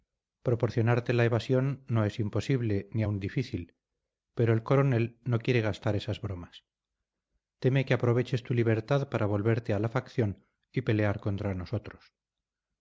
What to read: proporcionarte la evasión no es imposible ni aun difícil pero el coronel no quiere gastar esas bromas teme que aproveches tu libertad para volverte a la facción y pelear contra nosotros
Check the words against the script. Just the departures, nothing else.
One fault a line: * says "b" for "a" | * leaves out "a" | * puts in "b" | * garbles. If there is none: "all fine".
all fine